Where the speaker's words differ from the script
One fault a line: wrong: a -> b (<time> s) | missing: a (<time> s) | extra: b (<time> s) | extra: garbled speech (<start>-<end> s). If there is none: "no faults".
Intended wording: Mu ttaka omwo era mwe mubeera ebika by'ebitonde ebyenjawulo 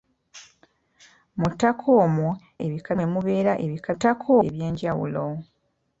wrong: era -> ebika (2.7 s)
wrong: by'ebitonde -> ttaka (3.9 s)